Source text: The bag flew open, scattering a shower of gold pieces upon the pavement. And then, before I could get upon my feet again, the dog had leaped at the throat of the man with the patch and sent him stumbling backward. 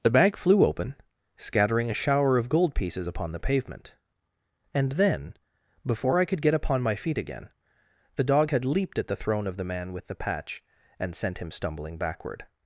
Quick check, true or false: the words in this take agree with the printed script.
false